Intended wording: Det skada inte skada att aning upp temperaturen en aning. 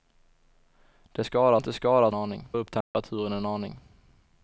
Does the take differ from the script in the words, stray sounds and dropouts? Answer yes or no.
yes